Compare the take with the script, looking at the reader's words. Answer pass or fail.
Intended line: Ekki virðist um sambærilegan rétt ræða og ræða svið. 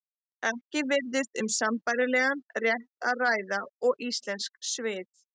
fail